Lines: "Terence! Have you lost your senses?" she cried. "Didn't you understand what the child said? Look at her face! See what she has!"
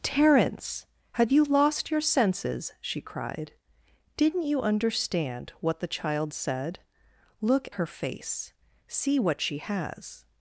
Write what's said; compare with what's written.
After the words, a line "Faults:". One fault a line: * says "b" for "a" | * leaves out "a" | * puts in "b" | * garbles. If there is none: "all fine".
"Terence! Have you lost your senses?" she cried. "Didn't you understand what the child said? Look her face! See what she has!"
Faults:
* leaves out "at"